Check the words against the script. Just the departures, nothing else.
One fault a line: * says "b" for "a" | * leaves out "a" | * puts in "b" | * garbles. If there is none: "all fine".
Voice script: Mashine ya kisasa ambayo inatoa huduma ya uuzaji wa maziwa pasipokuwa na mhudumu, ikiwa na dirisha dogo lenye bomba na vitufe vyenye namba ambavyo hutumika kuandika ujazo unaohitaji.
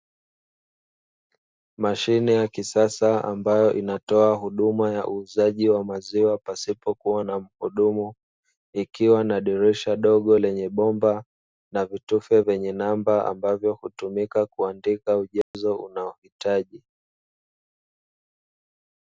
all fine